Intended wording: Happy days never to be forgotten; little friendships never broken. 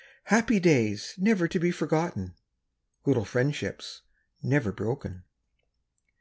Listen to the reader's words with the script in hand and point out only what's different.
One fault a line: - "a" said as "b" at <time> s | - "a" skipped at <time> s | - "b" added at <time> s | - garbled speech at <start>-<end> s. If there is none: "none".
none